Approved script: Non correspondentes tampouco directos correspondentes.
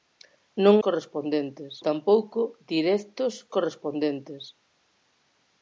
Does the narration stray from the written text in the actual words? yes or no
no